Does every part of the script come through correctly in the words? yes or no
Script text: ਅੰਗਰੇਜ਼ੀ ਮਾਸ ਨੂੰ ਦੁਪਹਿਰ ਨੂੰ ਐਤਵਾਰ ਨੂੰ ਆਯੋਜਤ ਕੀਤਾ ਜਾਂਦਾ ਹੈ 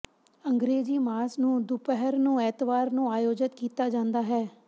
yes